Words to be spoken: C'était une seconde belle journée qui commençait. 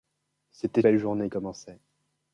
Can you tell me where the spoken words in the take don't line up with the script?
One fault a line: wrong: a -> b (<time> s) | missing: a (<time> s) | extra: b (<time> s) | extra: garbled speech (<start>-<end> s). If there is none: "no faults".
missing: une seconde (0.8 s)
missing: qui (1.3 s)